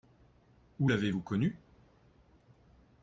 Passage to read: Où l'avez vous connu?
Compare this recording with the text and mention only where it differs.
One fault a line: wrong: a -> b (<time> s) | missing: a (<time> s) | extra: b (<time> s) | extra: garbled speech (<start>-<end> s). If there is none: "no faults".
no faults